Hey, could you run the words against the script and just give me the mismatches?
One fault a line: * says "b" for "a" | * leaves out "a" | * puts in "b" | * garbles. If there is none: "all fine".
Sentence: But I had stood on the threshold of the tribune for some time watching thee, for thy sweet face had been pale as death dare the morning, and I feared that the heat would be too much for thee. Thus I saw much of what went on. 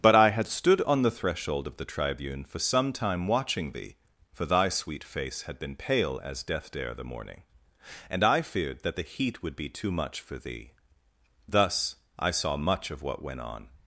all fine